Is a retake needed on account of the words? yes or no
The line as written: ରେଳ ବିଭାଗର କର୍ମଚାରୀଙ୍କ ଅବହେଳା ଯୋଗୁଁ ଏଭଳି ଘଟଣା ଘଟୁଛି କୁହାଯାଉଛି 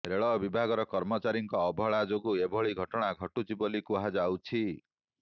yes